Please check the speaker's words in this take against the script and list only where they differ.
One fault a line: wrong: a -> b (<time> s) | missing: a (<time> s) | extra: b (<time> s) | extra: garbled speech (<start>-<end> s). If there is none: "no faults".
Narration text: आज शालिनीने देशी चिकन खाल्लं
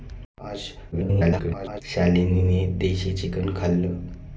extra: garbled speech (0.9-1.8 s)